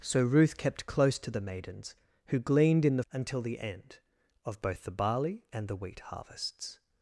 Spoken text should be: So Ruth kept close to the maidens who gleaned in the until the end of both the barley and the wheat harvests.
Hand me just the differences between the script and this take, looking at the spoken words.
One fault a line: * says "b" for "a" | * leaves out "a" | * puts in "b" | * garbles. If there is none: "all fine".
all fine